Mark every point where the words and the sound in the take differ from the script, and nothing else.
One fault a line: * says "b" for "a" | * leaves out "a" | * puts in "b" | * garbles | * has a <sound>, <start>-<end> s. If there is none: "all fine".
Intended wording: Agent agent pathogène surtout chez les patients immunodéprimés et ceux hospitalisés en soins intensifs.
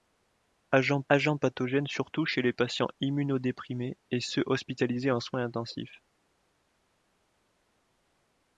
all fine